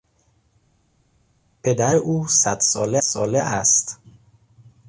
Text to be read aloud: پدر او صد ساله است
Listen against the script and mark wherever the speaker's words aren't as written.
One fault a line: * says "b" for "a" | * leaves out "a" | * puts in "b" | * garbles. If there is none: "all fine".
* puts in "ساله"